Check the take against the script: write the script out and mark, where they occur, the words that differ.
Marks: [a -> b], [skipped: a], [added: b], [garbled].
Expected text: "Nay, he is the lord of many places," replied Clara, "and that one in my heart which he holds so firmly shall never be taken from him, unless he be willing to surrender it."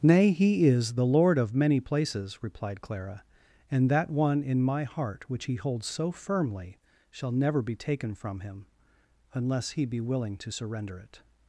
"Nay, he is the lord of many places," replied Clara, "and that one in my heart which he holds so firmly shall never be taken from him, unless he be willing to surrender it."